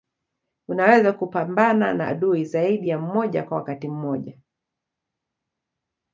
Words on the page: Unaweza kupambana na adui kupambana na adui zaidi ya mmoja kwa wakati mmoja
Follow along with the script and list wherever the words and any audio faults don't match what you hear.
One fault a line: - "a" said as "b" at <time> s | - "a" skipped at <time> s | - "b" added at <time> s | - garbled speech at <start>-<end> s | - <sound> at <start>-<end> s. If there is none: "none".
- "kupambana na adui" skipped at 2.4 s